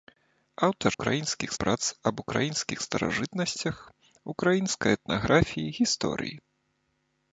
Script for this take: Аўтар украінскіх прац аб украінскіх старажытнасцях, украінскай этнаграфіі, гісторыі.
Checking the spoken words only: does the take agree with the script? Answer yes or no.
yes